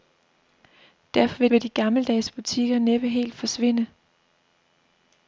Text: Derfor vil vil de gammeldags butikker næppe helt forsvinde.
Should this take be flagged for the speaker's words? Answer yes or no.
no